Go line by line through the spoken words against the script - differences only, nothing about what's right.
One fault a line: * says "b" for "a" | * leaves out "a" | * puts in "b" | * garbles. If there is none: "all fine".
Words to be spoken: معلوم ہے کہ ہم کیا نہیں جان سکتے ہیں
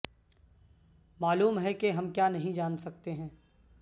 all fine